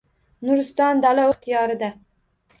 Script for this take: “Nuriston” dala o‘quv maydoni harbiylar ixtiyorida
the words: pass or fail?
fail